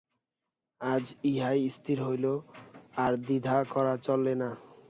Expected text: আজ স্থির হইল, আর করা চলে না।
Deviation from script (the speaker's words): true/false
true